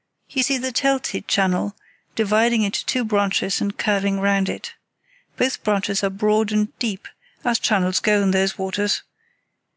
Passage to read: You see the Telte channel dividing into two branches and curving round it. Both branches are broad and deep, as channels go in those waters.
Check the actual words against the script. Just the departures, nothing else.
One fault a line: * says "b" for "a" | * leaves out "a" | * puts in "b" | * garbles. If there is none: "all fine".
all fine